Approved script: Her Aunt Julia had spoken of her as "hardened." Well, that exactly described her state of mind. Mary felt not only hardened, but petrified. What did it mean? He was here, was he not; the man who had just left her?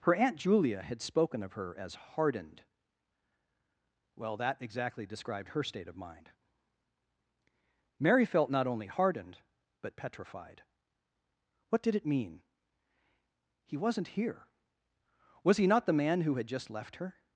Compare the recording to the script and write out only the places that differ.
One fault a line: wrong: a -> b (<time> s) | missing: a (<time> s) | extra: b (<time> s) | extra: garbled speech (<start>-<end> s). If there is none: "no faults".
wrong: was -> wasn't (13.8 s)